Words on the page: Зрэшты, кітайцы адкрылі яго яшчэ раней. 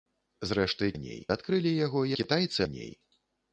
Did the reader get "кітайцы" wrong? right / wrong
wrong